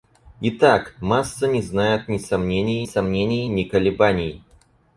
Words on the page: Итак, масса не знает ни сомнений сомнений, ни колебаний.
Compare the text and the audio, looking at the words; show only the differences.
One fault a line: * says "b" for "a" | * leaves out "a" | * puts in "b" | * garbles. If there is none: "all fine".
all fine